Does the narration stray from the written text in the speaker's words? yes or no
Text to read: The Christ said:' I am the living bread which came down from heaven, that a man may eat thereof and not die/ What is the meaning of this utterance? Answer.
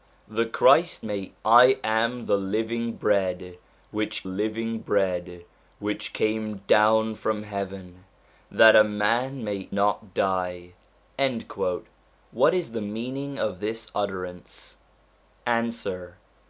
yes